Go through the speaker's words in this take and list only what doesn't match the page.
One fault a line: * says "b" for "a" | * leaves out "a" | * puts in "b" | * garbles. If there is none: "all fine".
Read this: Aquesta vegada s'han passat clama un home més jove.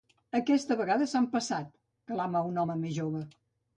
all fine